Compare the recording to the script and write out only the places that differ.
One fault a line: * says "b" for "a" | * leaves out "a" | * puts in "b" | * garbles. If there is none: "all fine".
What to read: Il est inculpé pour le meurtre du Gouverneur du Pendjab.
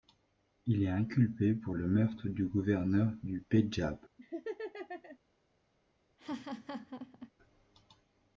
all fine